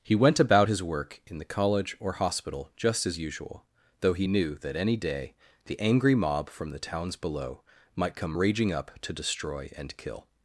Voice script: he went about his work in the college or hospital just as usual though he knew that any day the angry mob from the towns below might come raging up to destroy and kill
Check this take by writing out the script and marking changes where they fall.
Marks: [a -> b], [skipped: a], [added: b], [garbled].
he went about his work in the college or hospital just as usual though he knew that any day the angry mob from the towns below might come raging up to destroy and kill